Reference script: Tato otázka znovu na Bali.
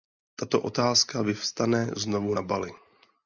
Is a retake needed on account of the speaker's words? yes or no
yes